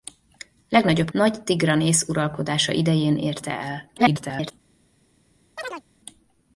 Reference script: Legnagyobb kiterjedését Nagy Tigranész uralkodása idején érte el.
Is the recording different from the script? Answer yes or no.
yes